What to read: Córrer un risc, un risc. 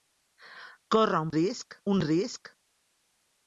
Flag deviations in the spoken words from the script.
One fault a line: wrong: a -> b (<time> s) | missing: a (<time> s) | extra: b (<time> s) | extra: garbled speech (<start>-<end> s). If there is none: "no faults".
no faults